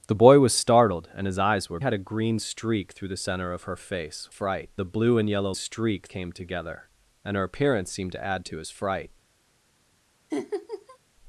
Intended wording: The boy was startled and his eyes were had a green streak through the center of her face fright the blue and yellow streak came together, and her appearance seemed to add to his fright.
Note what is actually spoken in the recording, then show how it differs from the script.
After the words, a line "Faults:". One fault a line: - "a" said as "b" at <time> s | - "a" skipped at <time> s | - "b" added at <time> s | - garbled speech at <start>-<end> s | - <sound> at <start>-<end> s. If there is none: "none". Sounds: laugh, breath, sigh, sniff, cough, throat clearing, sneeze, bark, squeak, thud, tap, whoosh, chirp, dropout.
The boy was startled and his eyes were had a green streak through the center of her face fright the blue and yellow streak came together, and her appearance seemed to add to his fright.
Faults:
- laugh at 10.3-11.0 s